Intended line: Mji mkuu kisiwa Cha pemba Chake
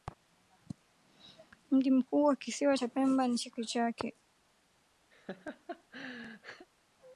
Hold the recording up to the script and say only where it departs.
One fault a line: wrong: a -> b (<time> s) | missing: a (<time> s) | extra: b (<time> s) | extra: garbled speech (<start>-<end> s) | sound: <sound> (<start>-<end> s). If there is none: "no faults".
extra: wa (2.2 s)
extra: ni Chake (3.3 s)
sound: laugh (5.1-6.7 s)